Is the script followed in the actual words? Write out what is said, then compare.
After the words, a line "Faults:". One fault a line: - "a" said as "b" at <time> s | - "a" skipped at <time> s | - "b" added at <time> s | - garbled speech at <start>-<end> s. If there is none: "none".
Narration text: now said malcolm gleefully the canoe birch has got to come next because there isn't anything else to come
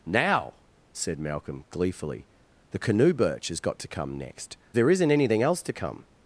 now said malcolm gleefully the canoe birch has got to come next there isn't anything else to come
Faults:
- "because" skipped at 4.6 s